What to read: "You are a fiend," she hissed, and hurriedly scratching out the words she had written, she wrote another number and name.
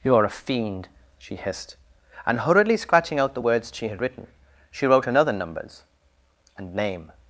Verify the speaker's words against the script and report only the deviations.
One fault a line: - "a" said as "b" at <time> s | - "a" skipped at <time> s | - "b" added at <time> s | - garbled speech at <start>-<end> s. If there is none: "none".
- "number" said as "numbers" at 5.3 s